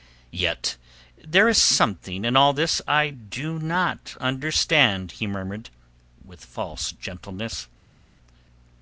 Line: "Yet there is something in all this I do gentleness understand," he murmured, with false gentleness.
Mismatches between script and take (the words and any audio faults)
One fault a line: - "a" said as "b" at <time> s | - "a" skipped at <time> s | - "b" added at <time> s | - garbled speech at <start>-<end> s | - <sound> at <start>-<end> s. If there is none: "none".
- "gentleness" said as "not" at 3.6 s